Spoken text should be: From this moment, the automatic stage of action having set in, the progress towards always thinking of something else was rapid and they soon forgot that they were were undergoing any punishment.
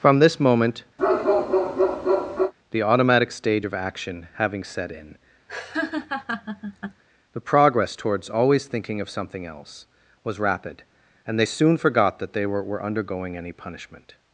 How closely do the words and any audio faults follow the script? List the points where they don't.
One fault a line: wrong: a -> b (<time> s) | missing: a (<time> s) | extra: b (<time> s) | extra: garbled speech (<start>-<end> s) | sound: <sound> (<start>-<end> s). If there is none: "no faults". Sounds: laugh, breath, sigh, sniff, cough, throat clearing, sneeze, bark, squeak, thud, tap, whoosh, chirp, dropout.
sound: bark (1.0-2.5 s)
sound: laugh (5.5-7.0 s)